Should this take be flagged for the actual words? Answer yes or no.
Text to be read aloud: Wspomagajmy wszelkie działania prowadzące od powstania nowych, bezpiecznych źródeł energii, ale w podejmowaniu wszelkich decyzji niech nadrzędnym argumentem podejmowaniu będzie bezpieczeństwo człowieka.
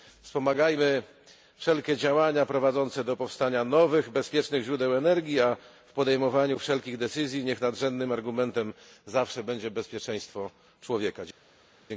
yes